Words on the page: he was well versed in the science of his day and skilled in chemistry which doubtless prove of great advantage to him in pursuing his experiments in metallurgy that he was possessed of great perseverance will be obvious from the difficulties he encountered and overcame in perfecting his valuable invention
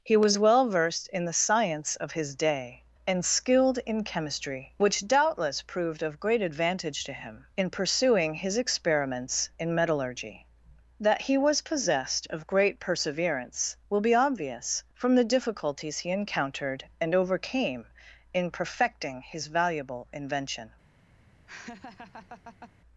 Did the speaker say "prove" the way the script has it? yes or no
no